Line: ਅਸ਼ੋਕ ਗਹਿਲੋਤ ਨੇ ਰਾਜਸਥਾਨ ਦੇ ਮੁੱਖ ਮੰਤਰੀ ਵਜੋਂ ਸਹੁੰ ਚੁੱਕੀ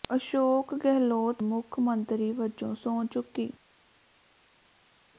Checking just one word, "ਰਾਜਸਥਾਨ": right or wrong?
wrong